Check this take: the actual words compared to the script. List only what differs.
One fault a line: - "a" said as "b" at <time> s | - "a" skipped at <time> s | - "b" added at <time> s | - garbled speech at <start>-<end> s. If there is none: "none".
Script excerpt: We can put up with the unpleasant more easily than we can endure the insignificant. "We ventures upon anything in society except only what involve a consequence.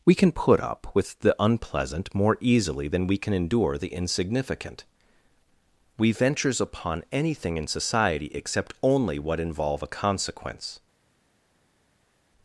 none